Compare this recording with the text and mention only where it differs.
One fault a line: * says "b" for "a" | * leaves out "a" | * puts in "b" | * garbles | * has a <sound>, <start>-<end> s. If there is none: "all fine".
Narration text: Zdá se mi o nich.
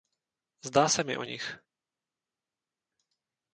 all fine